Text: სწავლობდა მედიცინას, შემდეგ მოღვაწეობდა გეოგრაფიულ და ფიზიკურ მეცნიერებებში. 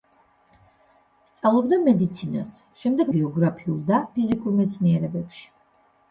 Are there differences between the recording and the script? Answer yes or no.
yes